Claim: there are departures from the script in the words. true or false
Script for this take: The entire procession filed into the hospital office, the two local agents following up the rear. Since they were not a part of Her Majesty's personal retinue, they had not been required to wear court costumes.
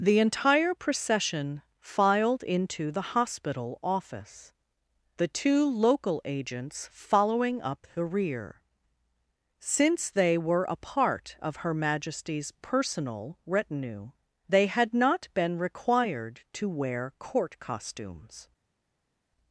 true